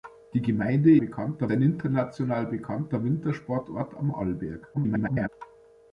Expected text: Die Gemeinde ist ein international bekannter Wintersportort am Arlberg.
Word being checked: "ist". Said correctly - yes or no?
no